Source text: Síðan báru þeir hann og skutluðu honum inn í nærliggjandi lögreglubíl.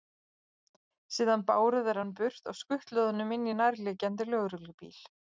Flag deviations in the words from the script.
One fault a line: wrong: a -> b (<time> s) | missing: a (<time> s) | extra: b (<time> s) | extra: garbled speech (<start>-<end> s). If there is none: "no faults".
extra: burt (2.2 s)